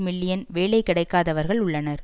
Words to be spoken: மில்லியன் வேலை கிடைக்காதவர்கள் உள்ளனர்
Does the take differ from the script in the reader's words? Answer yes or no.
no